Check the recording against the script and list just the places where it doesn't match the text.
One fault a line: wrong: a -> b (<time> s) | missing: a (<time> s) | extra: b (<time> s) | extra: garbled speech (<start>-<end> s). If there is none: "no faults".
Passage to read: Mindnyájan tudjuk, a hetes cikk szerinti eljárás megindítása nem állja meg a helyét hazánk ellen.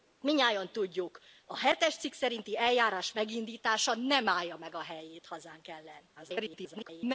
extra: garbled speech (6.2-7.1 s)